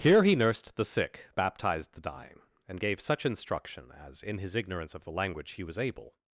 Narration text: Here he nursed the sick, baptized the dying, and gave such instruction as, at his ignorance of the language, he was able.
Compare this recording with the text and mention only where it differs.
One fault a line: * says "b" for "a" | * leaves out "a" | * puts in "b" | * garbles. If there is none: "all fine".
* says "in" for "at"